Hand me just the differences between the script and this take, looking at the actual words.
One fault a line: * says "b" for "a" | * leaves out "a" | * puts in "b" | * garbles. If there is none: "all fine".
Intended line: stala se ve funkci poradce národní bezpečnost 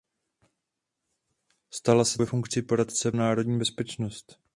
all fine